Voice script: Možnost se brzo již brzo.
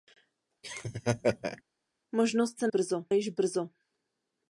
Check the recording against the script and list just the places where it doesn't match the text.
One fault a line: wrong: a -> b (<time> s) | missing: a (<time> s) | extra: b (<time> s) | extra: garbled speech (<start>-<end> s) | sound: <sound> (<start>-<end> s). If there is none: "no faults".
sound: laugh (0.6-1.6 s)